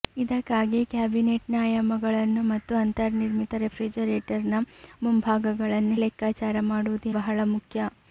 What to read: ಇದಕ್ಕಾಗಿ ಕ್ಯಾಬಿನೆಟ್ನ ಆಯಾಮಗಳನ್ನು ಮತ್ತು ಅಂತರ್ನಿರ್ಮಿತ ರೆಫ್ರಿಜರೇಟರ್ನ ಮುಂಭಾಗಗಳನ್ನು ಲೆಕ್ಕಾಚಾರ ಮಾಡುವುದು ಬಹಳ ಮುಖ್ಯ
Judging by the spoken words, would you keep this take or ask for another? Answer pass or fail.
pass